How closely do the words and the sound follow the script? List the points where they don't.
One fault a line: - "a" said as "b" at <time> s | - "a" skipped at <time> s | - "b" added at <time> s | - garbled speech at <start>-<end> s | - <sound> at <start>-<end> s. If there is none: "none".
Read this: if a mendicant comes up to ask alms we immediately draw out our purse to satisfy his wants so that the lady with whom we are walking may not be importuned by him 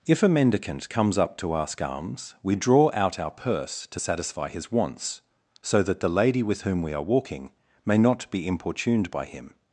- "immediately" skipped at 2.5 s